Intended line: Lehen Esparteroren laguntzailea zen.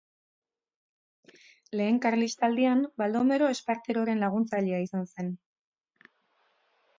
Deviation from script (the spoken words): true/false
true